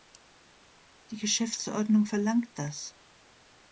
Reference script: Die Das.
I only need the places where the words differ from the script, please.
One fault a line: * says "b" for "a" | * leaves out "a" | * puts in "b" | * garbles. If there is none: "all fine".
* puts in "Geschäftsordnung verlangt"